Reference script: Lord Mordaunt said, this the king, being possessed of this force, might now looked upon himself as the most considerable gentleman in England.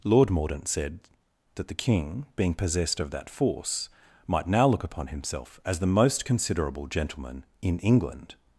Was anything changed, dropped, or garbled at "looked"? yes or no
yes